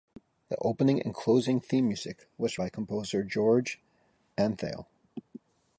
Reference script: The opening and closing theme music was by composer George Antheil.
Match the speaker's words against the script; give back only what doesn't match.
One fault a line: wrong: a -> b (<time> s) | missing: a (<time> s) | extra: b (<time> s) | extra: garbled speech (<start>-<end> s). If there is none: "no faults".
no faults